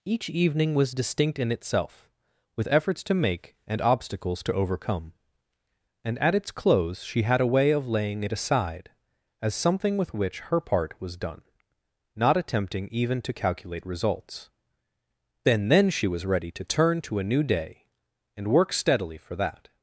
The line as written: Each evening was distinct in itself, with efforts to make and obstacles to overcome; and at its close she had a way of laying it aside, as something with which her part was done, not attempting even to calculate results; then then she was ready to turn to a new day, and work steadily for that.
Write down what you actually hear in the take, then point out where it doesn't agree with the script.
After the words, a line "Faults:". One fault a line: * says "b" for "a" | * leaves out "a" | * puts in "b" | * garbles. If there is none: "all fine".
Each evening was distinct in itself, with efforts to make and obstacles to overcome; and at its close she had a way of laying it aside, as something with which her part was done, not attempting even to calculate results; then then she was ready to turn to a new day, and work steadily for that.
Faults:
all fine